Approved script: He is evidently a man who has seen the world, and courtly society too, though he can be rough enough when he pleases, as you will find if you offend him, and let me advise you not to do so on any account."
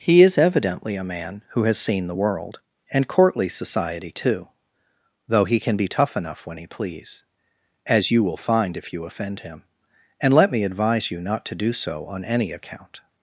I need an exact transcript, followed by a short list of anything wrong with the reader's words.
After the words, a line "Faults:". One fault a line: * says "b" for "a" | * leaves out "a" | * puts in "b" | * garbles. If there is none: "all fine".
He is evidently a man who has seen the world, and courtly society too, though he can be tough enough when he please, as you will find if you offend him, and let me advise you not to do so on any account."
Faults:
* says "tough" for "rough"
* says "please" for "pleases"